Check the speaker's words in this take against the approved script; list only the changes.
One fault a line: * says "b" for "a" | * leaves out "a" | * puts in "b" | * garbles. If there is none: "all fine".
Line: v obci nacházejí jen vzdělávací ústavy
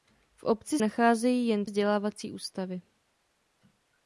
all fine